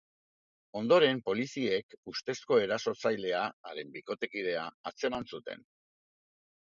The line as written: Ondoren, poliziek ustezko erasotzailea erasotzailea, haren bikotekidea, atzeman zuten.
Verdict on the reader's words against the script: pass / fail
fail